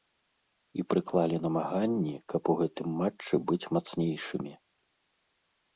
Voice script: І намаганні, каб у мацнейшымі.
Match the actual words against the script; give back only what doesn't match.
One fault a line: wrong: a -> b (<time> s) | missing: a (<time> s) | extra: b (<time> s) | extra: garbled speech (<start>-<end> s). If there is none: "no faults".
extra: прыклалі (0.9 s)
extra: гэтым матчы быць (2.6 s)